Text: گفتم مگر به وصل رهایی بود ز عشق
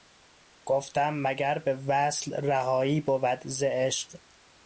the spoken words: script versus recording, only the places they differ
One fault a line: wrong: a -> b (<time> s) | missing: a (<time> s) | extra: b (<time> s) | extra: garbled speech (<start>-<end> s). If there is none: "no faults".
no faults